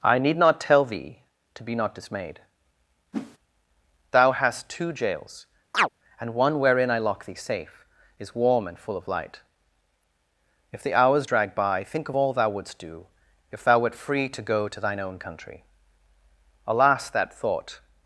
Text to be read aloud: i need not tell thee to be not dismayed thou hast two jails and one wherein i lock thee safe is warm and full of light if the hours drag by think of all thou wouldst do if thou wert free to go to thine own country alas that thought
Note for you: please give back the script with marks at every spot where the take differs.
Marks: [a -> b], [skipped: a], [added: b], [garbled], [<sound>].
i need not tell thee to be not dismayed [whoosh] thou hast two jails [chirp] and one wherein i lock thee safe is warm and full of light if the hours drag by think of all thou wouldst do if thou wert free to go to thine own country alas that thought